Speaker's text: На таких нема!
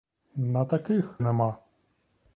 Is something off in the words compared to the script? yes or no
no